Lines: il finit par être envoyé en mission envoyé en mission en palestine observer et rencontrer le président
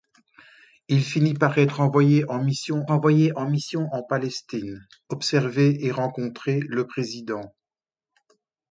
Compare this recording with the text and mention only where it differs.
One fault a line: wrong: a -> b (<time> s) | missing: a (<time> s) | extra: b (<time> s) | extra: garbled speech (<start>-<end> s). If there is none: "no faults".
no faults